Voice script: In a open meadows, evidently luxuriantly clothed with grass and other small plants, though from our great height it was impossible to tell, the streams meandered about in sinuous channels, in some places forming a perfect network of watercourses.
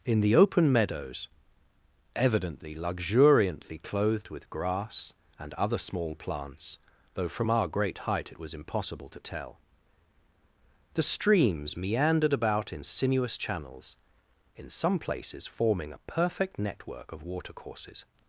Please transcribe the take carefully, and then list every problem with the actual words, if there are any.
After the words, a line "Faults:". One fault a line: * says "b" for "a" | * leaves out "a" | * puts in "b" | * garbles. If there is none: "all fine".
In the open meadows, evidently luxuriantly clothed with grass and other small plants, though from our great height it was impossible to tell, the streams meandered about in sinuous channels, in some places forming a perfect network of watercourses.
Faults:
* says "the" for "a"